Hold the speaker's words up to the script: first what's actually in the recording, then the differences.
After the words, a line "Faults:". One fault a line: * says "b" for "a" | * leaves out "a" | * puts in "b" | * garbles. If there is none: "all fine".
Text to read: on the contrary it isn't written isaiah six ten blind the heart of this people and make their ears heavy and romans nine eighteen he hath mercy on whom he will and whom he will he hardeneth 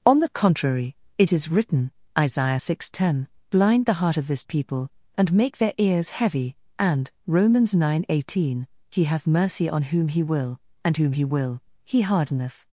on the contrary it is written isaiah six ten blind the heart of this people and make their ears heavy and romans nine eighteen he hath mercy on whom he will and whom he will he hardeneth
Faults:
* says "is" for "isn't"